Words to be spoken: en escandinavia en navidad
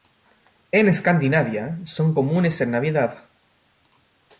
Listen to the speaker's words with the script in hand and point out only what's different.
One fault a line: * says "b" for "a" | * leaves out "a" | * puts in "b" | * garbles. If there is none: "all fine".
* puts in "son comunes"